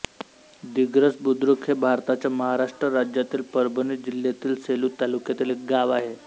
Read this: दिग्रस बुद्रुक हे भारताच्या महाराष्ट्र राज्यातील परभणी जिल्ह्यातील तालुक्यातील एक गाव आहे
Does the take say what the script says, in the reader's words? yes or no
no